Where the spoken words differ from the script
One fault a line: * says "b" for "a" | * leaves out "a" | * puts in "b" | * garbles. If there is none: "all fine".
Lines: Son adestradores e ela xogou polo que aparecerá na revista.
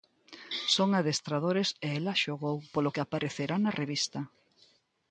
all fine